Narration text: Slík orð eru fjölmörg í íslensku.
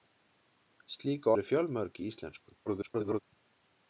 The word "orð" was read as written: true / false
false